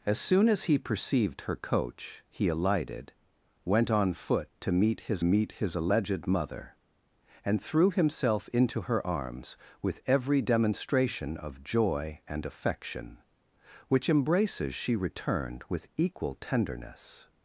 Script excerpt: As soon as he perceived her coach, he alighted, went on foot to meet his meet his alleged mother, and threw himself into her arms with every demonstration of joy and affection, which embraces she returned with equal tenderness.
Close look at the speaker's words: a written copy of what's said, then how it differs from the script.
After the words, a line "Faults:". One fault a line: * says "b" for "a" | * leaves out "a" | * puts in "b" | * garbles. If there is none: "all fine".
As soon as he perceived her coach, he alighted, went on foot to meet his meet his alleged mother, and threw himself into her arms with every demonstration of joy and affection, which embraces she returned with equal tenderness.
Faults:
all fine